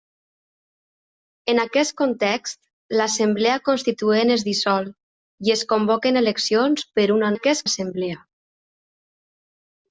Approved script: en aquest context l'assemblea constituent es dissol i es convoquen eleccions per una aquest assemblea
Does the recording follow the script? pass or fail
pass